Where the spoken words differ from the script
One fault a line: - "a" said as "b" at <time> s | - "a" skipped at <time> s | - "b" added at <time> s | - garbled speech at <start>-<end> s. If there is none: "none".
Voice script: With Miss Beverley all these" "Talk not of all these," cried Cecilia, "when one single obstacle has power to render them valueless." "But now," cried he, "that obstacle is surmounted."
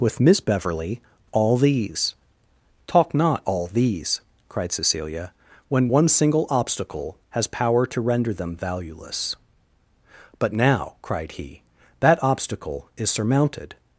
- "of" skipped at 3.4 s